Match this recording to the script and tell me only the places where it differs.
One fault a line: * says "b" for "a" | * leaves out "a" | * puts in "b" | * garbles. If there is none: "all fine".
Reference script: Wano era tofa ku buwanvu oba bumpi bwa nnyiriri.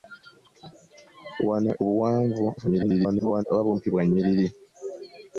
* leaves out "era tofa"
* garbles